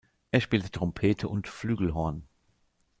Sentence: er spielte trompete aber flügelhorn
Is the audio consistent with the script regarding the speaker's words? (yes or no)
no